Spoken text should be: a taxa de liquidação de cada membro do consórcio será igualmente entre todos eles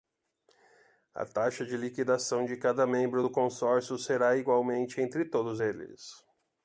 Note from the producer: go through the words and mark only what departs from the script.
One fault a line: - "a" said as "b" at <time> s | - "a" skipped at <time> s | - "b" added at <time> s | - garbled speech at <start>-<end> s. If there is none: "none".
none